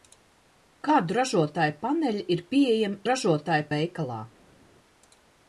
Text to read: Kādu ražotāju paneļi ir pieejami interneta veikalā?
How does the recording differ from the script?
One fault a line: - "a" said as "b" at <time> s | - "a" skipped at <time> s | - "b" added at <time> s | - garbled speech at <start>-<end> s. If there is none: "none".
- "interneta" said as "ražotāju" at 3.1 s